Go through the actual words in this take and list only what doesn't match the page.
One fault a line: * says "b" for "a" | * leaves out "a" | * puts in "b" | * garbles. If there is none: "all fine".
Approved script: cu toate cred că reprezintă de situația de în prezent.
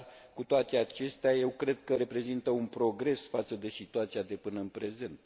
* puts in "acestea eu"
* puts in "un progres față"
* puts in "până"